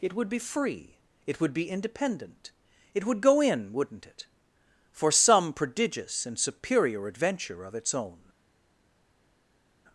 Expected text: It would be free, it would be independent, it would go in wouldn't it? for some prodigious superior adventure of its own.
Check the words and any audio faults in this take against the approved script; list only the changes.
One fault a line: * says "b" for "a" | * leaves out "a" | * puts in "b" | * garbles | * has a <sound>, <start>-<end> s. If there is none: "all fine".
* puts in "and"